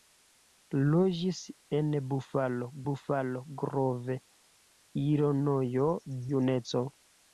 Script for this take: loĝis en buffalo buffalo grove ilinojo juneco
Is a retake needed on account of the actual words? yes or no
no